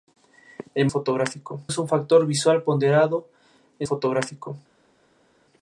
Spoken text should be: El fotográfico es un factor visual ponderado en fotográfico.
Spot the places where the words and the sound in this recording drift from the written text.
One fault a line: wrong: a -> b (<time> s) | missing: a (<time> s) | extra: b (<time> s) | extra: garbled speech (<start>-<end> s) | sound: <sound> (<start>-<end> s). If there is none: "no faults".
no faults